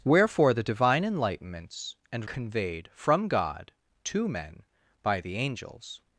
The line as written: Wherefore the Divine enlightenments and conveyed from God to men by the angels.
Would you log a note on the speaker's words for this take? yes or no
no